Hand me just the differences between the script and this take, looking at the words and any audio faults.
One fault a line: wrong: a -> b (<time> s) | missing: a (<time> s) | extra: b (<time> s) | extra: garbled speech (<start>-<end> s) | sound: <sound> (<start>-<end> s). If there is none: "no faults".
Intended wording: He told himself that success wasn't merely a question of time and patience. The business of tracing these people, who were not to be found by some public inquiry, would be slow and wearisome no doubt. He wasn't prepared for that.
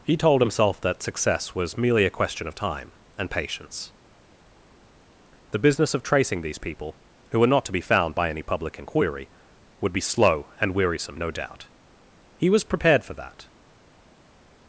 wrong: wasn't -> was (1.5 s)
wrong: some -> any (8.3 s)
wrong: wasn't -> was (12.5 s)